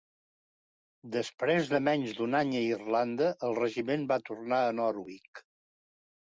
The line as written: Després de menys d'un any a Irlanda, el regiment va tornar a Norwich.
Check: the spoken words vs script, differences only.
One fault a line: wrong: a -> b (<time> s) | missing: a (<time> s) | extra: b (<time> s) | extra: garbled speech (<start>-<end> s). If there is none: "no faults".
no faults